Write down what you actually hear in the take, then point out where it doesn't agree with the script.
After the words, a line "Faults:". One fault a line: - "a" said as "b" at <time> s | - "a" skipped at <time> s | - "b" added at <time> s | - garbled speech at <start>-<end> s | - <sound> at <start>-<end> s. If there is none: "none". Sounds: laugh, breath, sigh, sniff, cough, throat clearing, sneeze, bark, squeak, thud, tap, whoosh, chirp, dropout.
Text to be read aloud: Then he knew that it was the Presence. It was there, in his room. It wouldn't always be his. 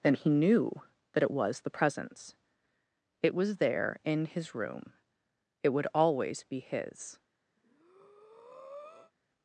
Then he knew that it was the Presence. It was there, in his room. It would always be his.
Faults:
- "wouldn't" said as "would" at 5.7 s
- breath at 7.6-9.1 s